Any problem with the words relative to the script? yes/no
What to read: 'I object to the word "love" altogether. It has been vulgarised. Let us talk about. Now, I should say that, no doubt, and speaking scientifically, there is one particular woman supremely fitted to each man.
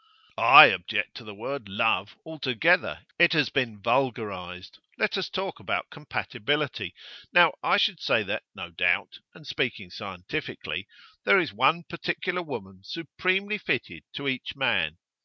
yes